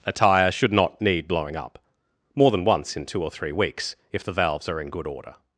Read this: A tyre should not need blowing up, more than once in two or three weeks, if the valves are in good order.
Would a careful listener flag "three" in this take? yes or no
no